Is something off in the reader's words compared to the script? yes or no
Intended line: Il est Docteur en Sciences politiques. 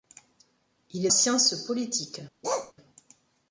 yes